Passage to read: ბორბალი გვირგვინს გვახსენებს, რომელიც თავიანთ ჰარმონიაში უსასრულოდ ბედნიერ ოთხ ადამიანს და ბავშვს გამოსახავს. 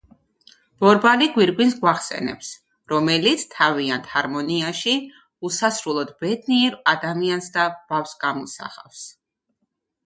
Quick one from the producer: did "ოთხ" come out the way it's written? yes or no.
no